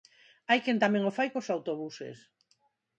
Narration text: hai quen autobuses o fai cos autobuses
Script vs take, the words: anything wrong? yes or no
yes